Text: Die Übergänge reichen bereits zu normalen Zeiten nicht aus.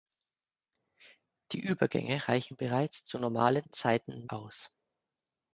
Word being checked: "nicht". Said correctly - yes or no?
no